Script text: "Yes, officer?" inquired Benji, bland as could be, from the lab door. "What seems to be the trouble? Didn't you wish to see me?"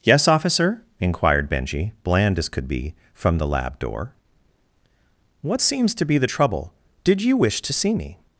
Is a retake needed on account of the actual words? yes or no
yes